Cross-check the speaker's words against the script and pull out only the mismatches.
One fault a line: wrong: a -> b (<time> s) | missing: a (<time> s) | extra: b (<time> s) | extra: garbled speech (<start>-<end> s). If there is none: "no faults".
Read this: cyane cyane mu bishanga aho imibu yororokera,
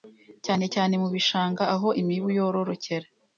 no faults